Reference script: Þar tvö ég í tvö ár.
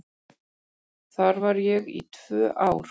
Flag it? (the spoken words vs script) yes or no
yes